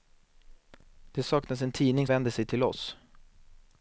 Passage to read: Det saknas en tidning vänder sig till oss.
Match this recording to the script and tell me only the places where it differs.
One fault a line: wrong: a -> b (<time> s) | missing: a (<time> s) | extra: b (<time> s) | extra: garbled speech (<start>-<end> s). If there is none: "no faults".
no faults